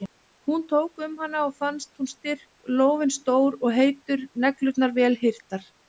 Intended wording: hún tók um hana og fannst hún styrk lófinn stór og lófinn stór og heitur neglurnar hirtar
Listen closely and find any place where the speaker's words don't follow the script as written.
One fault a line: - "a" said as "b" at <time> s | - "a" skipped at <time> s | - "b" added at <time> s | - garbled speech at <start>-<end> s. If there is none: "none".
- "lófinn stór og" skipped at 3.8 s
- "vel" added at 5.0 s